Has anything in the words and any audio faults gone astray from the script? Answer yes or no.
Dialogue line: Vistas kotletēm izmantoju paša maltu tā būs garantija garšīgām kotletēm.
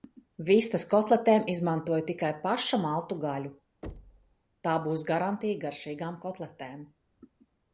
yes